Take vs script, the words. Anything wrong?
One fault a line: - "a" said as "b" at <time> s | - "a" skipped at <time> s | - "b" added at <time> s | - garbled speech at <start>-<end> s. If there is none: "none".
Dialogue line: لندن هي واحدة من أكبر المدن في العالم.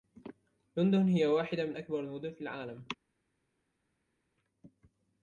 none